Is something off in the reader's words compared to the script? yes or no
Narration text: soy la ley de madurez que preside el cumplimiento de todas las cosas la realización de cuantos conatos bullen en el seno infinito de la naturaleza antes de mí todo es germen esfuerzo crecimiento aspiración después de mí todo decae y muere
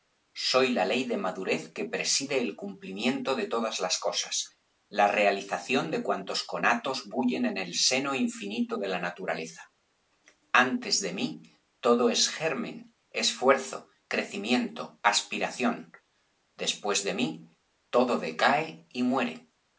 no